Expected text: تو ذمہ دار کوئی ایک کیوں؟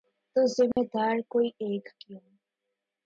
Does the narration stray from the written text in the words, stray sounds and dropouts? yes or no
yes